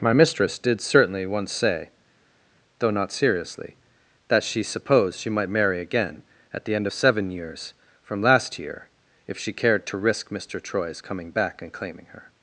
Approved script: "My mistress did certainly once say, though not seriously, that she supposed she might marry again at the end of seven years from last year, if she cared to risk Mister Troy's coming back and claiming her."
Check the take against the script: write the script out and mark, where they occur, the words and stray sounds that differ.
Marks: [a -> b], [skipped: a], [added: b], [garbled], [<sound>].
"My mistress did certainly once say, though not seriously, that she supposed she might marry again at the end of seven years from last year, if she cared to risk Mister Troy's coming back and claiming her."